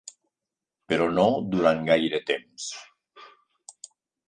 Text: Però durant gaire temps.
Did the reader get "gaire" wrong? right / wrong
right